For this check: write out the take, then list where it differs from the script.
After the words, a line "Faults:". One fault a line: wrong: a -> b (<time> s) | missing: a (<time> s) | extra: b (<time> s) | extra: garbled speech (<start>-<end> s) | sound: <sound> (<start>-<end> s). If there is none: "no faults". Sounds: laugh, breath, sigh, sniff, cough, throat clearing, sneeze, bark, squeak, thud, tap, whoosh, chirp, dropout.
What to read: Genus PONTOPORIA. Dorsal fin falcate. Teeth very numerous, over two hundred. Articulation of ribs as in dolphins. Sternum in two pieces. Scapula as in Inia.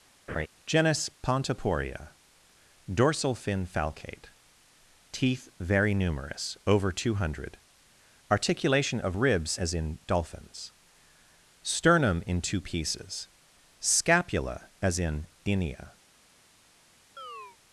Genus PONTOPORIA. Dorsal fin falcate. Teeth very numerous, over two hundred. Articulation of ribs as in dolphins. Sternum in two pieces. Scapula as in Inia.
Faults:
sound: laugh (0.3-0.5 s)
sound: chirp (17.2-17.6 s)